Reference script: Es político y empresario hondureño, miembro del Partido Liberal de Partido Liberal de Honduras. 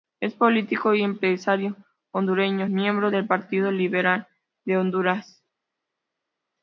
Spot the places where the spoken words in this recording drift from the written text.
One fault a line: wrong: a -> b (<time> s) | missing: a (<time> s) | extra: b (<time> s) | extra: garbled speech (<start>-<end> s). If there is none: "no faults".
missing: Partido Liberal de (4.8 s)